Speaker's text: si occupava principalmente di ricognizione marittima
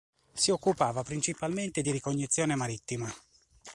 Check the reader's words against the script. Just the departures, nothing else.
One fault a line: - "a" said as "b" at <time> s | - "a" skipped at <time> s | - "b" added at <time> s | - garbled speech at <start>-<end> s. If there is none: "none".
none